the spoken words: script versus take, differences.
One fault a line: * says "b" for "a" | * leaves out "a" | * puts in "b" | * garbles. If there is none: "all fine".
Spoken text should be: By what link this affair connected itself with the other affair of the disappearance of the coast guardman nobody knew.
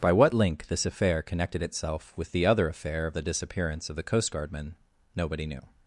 all fine